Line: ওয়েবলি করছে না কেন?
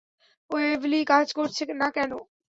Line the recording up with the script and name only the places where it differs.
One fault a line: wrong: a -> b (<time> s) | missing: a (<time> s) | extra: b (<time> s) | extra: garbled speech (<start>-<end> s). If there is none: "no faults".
extra: কাজ (1.1 s)